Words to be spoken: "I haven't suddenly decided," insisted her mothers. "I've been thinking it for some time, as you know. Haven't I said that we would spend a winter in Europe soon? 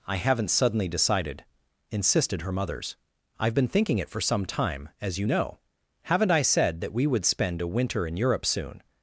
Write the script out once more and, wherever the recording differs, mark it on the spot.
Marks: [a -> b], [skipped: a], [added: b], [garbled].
"I haven't suddenly decided," insisted her mothers. "I've been thinking it for some time, as you know. Haven't I said that we would spend a winter in Europe soon?